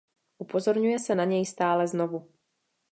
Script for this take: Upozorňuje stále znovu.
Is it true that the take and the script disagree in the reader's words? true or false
true